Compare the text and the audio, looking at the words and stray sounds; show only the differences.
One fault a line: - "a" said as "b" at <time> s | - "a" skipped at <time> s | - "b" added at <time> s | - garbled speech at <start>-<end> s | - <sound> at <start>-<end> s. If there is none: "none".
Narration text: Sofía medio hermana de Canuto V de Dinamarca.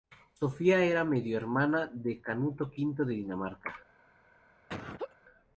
- "era" added at 0.8 s
- laugh at 4.7-5.2 s